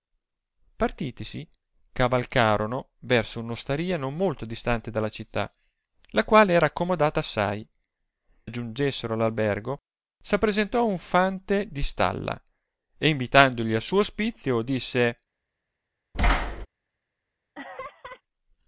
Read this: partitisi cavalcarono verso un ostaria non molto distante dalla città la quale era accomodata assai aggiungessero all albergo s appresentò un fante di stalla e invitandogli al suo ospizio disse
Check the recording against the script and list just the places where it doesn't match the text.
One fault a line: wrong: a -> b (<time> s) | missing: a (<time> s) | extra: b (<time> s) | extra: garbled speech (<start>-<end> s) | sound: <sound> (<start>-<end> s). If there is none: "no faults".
sound: thud (16.1-16.7 s)
sound: laugh (17.5-18.2 s)